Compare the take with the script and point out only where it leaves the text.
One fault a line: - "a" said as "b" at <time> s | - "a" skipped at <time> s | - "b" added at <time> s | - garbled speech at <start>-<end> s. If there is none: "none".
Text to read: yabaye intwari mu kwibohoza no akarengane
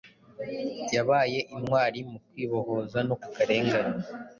none